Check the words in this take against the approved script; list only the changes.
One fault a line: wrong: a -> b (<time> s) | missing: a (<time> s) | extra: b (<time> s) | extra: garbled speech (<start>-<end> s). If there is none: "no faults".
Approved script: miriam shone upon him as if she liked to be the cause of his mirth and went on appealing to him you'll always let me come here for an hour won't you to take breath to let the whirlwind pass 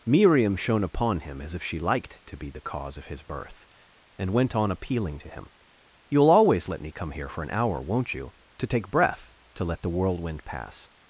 wrong: mirth -> birth (3.2 s)